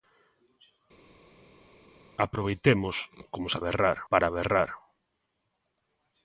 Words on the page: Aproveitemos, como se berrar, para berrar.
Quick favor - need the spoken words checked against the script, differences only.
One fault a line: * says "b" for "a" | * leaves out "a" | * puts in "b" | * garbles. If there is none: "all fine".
all fine